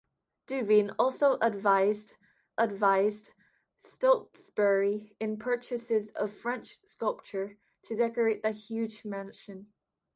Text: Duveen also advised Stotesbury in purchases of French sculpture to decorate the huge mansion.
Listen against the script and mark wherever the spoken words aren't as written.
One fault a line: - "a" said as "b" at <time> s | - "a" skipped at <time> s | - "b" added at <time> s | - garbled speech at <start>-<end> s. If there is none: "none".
- "advised" added at 2.6 s